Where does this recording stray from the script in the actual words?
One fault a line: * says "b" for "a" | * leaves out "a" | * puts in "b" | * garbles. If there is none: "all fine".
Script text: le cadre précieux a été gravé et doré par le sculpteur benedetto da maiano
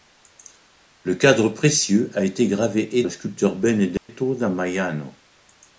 * leaves out "doré par"